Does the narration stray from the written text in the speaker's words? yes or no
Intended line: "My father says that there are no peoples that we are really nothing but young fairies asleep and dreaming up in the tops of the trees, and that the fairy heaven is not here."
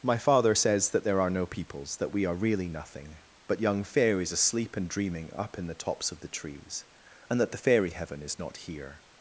no